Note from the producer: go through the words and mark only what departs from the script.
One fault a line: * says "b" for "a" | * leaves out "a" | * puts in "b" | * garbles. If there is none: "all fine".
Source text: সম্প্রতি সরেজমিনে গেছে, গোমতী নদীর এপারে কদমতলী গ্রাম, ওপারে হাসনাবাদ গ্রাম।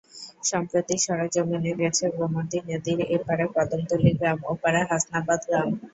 all fine